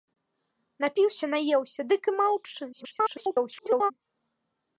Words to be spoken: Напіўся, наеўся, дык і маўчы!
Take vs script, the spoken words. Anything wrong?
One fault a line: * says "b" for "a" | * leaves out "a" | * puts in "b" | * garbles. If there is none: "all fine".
* garbles